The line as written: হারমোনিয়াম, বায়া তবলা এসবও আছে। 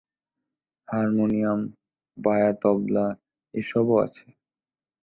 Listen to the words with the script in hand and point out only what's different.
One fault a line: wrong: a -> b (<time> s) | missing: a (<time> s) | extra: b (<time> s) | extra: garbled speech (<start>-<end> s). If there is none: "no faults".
no faults